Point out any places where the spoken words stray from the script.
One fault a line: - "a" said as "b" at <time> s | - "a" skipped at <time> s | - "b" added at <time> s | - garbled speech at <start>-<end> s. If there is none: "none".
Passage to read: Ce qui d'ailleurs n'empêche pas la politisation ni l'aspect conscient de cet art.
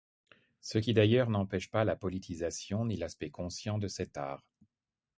none